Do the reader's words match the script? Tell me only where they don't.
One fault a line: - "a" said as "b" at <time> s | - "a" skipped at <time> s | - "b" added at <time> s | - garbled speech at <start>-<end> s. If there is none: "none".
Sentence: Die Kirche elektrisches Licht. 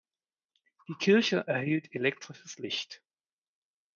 - "erhielt" added at 1.5 s